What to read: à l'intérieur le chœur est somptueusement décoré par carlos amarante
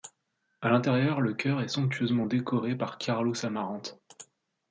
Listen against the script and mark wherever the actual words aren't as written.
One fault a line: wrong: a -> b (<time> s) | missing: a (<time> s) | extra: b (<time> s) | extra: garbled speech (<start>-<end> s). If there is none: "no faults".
no faults